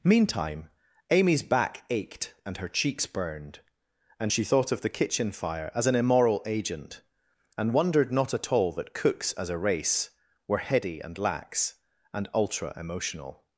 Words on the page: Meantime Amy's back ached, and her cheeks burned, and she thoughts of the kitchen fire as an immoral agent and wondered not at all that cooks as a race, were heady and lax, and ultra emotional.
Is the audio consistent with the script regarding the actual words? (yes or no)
no